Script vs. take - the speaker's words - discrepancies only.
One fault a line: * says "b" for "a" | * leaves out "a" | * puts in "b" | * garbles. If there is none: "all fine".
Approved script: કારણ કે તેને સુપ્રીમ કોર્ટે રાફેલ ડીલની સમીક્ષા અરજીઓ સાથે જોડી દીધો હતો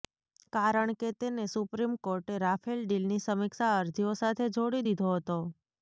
all fine